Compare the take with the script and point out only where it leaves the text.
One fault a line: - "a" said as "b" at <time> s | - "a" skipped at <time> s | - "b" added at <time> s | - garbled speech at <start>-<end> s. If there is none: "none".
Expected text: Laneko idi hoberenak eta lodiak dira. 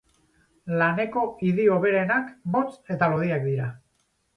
- "motz" added at 2.6 s